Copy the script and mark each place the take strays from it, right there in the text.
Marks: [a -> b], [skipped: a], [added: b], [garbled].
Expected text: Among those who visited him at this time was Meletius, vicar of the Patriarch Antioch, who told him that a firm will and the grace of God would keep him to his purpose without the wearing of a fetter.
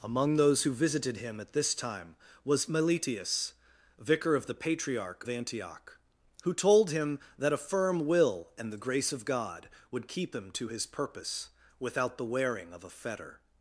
Among those who visited him at this time was Meletius, vicar of the Patriarch Antioch, who told him that a firm will and the grace of God would keep him to his purpose without the wearing of a fetter.